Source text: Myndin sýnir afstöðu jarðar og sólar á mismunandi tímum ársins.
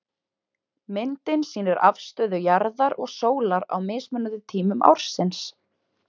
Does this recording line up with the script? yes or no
yes